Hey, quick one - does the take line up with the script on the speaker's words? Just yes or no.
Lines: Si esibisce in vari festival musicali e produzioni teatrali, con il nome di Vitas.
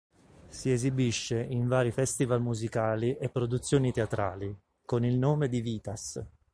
yes